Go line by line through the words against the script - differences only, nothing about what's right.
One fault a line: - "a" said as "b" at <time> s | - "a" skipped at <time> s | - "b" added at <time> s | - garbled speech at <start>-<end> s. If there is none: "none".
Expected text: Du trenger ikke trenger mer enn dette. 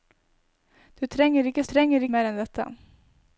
none